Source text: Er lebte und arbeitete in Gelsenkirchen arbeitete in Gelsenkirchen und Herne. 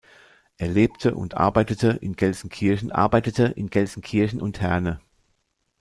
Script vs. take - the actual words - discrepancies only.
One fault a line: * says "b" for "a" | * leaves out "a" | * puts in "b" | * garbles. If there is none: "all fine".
all fine